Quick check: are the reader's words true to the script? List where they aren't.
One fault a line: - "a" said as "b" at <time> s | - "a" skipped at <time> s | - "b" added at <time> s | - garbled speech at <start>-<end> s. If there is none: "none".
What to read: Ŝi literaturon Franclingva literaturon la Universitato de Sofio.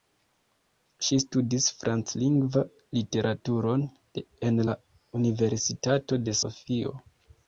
- "literaturon" said as "studis" at 1.2 s
- "en" added at 4.5 s